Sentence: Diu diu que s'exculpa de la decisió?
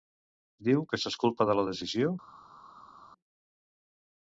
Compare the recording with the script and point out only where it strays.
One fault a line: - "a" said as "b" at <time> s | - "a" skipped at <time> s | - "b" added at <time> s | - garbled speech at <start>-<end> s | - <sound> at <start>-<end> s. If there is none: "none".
- "diu" skipped at 0.8 s